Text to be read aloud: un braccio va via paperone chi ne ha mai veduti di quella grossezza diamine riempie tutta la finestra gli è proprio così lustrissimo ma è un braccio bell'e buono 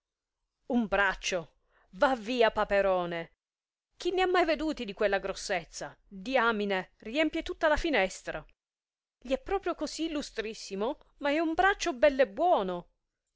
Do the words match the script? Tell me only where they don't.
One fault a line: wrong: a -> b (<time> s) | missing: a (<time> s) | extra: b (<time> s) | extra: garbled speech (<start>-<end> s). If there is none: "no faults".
no faults